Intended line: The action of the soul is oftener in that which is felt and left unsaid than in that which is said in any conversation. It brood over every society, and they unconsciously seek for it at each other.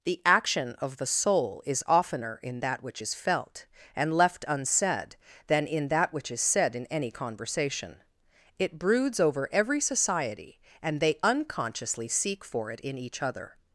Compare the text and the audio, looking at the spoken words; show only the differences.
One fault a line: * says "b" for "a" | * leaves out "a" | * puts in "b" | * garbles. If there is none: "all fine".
* says "broods" for "brood"
* says "in" for "at"